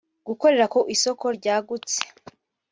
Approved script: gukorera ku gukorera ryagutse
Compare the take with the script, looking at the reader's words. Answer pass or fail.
fail